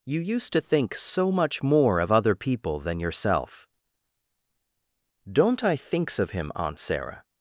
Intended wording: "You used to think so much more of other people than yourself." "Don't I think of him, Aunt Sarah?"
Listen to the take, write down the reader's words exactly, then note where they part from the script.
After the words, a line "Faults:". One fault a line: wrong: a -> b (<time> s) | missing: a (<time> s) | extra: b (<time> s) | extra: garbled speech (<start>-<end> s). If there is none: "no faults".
"You used to think so much more of other people than yourself." "Don't I thinks of him, Aunt Sarah?"
Faults:
wrong: think -> thinks (5.8 s)